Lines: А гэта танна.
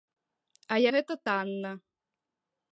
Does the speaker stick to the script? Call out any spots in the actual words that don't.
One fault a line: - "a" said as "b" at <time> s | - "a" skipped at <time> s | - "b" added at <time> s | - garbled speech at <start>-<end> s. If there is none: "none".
none